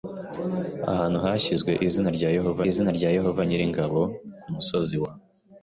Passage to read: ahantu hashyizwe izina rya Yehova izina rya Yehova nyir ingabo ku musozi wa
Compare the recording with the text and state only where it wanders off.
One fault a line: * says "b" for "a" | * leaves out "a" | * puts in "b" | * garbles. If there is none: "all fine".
all fine